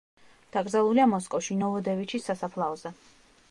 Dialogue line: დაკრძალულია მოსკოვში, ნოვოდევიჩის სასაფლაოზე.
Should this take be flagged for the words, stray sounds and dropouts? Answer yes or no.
no